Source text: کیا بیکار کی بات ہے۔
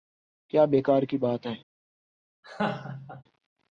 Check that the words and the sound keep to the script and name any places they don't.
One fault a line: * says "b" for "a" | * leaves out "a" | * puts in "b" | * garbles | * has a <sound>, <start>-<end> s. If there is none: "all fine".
* has a laugh, 2.4-3.2 s